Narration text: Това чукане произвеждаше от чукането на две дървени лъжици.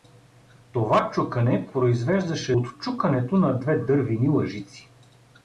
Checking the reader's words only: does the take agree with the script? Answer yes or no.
yes